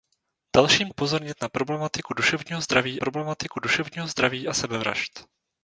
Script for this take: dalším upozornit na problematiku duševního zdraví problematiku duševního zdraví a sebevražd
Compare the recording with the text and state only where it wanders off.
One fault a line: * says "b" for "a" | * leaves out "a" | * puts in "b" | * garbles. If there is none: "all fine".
all fine